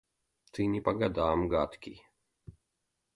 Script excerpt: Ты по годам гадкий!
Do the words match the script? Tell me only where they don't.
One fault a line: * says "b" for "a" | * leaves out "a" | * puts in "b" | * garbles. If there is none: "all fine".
* puts in "не"